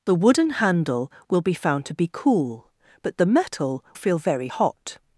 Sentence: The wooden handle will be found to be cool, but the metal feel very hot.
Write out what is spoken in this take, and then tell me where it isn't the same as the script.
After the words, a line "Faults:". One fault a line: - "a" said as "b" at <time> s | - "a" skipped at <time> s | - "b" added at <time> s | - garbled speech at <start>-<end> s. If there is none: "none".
The wooden handle will be found to be cool, but the metal feel very hot.
Faults:
none